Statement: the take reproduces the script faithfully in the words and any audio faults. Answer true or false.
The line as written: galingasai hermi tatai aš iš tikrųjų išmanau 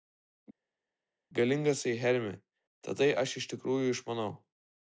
true